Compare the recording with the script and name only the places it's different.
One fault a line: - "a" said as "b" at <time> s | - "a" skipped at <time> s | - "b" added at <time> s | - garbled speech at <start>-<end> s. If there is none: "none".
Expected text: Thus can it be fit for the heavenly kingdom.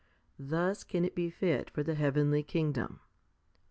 none